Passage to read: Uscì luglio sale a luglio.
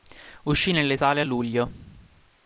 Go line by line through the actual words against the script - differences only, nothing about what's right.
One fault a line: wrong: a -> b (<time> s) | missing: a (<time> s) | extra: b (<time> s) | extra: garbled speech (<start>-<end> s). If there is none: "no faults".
wrong: luglio -> nelle (0.7 s)